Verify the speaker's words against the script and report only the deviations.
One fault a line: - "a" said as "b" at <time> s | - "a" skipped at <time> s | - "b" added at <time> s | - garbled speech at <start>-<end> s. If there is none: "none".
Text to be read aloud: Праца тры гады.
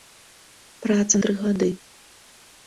none